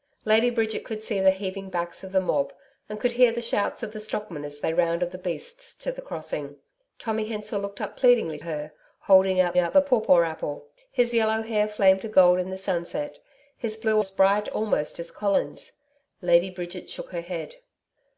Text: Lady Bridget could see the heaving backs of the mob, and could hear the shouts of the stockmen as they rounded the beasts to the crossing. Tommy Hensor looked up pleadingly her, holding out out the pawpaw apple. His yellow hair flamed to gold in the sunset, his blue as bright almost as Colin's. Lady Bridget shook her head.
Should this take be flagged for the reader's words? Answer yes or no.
no